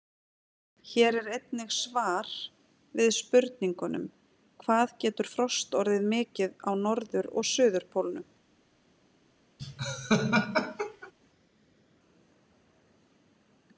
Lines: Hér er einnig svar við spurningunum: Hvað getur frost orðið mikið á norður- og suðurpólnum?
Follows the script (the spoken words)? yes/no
yes